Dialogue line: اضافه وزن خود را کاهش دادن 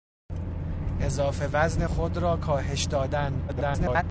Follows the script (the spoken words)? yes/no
no